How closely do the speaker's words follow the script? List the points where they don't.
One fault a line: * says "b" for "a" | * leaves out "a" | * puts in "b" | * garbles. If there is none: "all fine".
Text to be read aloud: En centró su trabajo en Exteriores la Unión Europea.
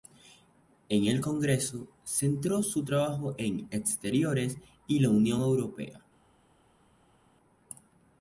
* puts in "el Congreso"
* puts in "y"